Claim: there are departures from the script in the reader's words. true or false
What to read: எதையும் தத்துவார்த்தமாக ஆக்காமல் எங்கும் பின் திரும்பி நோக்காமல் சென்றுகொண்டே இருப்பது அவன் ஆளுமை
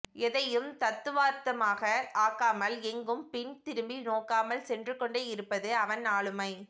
false